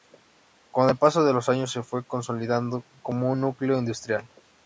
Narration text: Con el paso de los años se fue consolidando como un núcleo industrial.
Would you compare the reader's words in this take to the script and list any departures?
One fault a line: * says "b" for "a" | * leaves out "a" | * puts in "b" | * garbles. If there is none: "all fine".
all fine